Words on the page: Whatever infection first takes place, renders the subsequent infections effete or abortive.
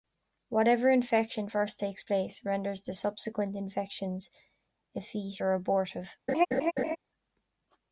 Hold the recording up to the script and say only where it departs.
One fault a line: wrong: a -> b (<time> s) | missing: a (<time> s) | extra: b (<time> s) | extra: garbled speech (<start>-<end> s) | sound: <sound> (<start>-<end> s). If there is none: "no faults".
sound: laugh (6.3-7.0 s)